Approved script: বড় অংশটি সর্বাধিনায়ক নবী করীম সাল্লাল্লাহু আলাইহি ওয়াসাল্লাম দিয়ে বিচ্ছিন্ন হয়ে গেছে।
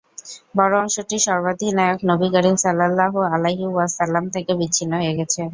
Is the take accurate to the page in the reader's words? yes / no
no